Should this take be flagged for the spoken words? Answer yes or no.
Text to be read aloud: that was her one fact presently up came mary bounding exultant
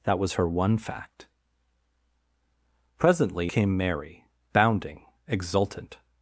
yes